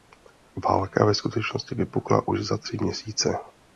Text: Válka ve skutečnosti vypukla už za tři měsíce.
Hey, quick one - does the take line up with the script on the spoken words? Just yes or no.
yes